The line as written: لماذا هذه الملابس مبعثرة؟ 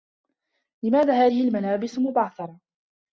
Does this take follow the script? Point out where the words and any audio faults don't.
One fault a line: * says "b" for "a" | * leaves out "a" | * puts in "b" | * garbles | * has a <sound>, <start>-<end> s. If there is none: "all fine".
all fine